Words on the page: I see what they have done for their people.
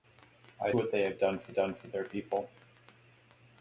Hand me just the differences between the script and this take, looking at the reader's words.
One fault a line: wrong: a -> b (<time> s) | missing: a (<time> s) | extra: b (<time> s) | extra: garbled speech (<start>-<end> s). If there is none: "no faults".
missing: see (0.7 s)
extra: done for (1.5 s)